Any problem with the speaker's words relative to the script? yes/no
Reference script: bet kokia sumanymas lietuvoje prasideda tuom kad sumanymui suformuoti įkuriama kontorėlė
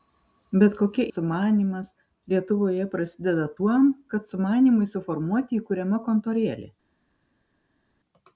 no